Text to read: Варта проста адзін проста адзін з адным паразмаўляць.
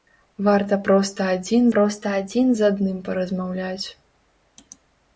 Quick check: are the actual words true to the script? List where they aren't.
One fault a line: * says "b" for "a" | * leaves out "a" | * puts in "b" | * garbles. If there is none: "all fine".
all fine